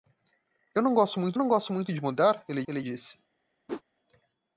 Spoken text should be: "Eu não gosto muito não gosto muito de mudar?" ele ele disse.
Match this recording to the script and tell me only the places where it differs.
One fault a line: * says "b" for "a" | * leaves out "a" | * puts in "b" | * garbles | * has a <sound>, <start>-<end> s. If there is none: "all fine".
* has a whoosh, 3.7-3.8 s